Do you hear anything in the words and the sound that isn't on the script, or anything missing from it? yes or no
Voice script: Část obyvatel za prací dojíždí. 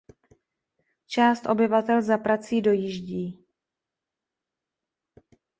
no